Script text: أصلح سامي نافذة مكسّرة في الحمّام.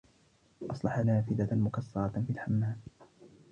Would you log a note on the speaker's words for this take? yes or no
yes